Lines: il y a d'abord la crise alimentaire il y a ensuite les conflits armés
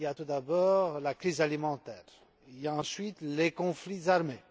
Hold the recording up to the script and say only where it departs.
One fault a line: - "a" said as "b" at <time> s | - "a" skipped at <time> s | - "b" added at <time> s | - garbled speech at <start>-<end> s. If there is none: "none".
- "tout" added at 0.1 s